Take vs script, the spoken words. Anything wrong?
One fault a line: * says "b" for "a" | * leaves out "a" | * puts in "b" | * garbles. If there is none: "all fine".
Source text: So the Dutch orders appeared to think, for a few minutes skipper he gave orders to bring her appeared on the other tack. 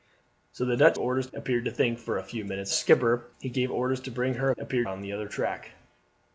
all fine